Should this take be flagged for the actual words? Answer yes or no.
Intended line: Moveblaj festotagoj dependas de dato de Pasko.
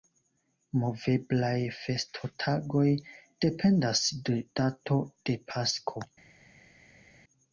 no